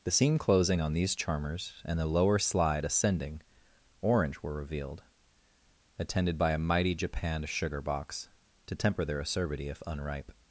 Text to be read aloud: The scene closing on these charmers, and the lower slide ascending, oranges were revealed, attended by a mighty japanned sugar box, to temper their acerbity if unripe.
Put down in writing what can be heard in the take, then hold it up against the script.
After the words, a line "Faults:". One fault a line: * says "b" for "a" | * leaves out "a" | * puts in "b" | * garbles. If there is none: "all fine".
The scene closing on these charmers, and the lower slide ascending, orange were revealed, attended by a mighty japanned sugar box, to temper their acerbity if unripe.
Faults:
* says "orange" for "oranges"